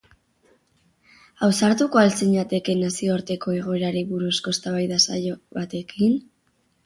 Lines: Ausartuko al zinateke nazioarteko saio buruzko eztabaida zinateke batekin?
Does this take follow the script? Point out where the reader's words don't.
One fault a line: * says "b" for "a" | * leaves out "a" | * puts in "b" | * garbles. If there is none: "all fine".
* says "egoerari" for "saio"
* says "saio" for "zinateke"